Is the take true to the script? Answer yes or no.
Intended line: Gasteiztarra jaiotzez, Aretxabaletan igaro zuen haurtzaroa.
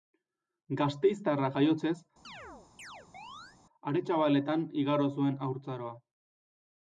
yes